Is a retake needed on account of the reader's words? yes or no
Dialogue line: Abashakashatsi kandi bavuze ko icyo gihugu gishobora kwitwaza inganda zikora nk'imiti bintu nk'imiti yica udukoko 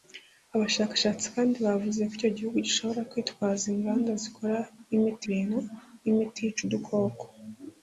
no